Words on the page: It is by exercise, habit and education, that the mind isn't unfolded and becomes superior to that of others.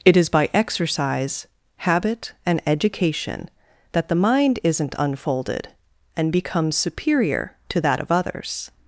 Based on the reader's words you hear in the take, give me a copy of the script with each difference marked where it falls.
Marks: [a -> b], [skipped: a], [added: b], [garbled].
It is by exercise, habit and education, that the mind isn't unfolded and becomes superior to that of others.